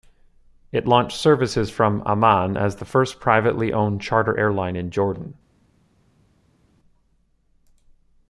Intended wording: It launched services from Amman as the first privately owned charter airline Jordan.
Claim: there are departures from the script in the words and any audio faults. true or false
true